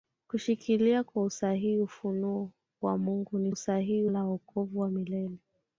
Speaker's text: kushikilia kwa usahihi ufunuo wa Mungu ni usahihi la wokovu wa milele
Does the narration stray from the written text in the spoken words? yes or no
no